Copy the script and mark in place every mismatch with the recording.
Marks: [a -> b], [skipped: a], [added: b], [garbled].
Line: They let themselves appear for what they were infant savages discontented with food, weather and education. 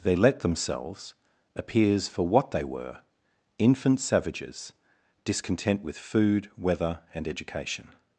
They let themselves [appear -> appears] for what they were infant savages [discontented -> discontent] with food, weather and education.